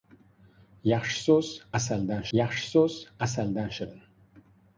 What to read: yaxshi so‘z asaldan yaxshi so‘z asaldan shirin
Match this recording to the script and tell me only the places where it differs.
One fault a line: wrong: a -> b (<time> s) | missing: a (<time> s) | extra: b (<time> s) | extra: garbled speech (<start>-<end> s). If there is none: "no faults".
no faults